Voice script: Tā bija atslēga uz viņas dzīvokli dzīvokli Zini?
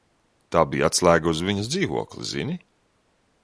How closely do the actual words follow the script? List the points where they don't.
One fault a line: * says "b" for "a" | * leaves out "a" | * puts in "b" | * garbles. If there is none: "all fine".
* leaves out "dzīvokli"